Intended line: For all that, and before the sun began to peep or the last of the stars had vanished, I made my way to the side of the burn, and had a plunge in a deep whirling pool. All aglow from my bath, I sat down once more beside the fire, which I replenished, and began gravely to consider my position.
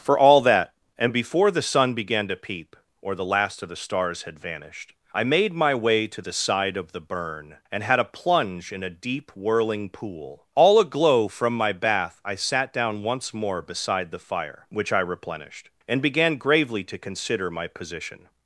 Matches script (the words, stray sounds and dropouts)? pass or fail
pass